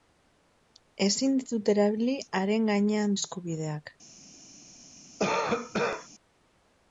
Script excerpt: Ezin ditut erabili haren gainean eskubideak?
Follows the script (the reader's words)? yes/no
yes